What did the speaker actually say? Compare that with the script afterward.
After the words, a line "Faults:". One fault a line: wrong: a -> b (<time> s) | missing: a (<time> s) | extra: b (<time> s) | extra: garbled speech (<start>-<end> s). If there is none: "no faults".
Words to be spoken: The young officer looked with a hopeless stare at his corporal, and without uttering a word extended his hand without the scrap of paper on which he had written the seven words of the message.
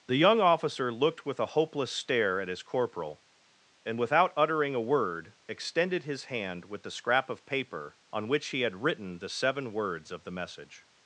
The young officer looked with a hopeless stare at his corporal, and without uttering a word extended his hand with the scrap of paper on which he had written the seven words of the message.
Faults:
wrong: without -> with (6.7 s)